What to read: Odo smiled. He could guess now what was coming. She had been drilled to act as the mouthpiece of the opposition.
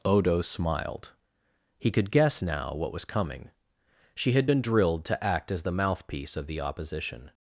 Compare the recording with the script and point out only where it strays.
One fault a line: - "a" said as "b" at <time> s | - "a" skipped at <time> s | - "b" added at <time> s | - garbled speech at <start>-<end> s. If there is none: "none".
none